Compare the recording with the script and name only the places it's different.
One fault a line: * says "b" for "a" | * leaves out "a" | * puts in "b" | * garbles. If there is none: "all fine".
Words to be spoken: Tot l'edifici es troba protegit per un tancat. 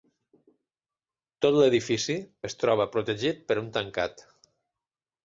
all fine